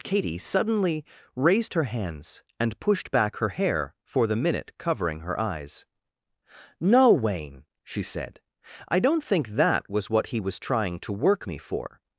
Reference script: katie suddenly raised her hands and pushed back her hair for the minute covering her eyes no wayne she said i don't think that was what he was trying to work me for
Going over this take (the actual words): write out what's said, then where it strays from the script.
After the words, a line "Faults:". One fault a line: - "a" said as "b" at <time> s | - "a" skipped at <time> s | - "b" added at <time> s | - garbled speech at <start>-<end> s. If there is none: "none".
katie suddenly raised her hands and pushed back her hair for the minute covering her eyes no wayne she said i don't think that was what he was trying to work me for
Faults:
none